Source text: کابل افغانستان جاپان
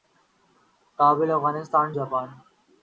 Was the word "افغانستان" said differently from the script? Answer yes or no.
no